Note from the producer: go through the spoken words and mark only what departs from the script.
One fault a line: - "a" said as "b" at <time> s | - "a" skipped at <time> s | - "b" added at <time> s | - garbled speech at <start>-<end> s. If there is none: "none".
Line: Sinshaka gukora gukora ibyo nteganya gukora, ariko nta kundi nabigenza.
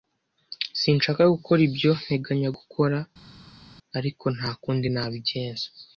- "gukora" skipped at 1.6 s